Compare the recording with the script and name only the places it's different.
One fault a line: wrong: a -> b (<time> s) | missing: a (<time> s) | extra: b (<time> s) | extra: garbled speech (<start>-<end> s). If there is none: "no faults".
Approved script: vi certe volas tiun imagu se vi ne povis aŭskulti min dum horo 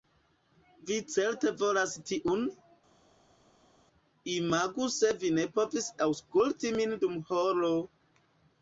no faults